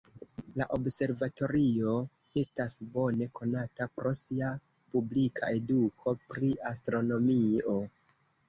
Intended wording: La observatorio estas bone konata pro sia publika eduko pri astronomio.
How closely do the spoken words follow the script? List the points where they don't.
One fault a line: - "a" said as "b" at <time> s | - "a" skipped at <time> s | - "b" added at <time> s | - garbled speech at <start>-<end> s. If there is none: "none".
none